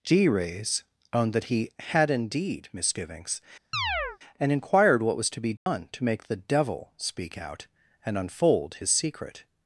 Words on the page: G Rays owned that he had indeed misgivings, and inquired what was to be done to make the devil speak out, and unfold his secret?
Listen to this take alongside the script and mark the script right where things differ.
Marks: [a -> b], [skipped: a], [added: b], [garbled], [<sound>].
G Rays owned that he had indeed misgivings, [chirp] and inquired what was to be done [dropout] to make the devil speak out, and unfold his secret?